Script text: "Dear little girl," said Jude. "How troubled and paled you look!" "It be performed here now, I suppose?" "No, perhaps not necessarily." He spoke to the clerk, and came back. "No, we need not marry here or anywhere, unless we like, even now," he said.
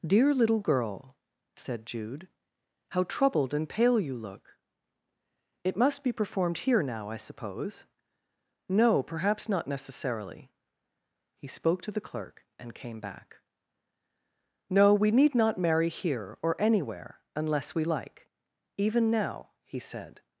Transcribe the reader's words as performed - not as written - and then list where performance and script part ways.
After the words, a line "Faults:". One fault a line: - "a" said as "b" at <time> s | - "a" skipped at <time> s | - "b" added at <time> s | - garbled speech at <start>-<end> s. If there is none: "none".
"Dear little girl," said Jude. "How troubled and pale you look!" "It must be performed here now, I suppose?" "No, perhaps not necessarily." He spoke to the clerk, and came back. "No, we need not marry here or anywhere, unless we like, even now," he said.
Faults:
- "paled" said as "pale" at 3.7 s
- "must" added at 5.8 s